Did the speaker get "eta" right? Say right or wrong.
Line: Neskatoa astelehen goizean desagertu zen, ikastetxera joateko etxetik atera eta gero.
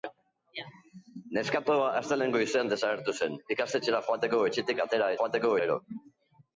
wrong